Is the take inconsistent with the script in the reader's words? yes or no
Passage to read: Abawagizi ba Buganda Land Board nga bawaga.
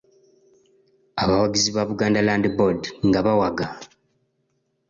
no